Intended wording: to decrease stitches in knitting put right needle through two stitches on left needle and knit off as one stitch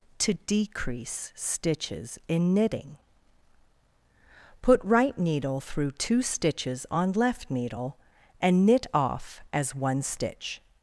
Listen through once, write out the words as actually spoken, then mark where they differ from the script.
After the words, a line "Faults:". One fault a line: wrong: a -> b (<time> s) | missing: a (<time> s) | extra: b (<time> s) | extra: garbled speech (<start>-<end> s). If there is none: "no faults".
to decrease stitches in knitting put right needle through two stitches on left needle and knit off as one stitch
Faults:
no faults